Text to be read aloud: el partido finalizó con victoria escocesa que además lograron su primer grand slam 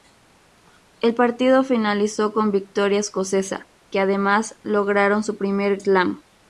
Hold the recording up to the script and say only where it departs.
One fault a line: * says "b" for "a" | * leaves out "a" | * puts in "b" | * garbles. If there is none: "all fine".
* leaves out "grand"